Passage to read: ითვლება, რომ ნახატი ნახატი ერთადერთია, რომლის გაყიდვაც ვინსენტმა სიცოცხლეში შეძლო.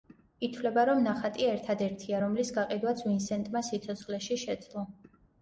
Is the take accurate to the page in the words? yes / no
no